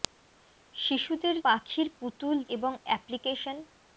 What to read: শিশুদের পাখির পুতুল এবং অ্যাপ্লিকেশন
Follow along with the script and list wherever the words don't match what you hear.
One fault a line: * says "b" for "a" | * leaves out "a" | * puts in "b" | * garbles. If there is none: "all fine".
all fine